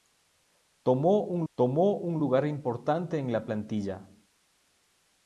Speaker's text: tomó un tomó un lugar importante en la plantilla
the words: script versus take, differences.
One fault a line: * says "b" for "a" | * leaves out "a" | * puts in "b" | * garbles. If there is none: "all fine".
all fine